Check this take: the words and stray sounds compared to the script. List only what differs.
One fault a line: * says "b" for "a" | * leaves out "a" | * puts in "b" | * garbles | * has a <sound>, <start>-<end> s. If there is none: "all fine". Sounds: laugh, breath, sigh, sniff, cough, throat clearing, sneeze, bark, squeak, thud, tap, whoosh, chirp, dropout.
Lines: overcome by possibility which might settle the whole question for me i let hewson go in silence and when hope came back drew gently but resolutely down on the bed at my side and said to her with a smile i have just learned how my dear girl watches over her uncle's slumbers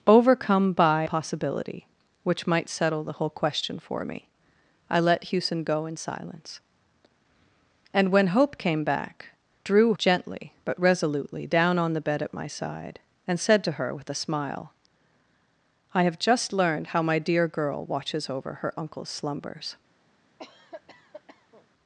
* has a cough, 20.4-21.7 s